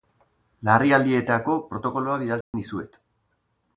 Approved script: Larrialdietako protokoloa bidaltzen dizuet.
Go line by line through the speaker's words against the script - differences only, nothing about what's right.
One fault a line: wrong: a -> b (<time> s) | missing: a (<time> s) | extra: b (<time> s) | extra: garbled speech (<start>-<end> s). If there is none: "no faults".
no faults